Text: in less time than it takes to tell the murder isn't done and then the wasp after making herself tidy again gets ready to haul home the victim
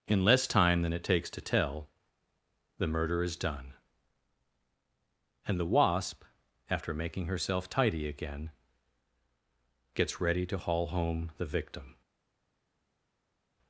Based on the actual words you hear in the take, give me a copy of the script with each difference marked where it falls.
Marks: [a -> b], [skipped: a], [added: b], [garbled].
in less time than it takes to tell the murder [isn't -> is] done and [skipped: then] the wasp after making herself tidy again gets ready to haul home the victim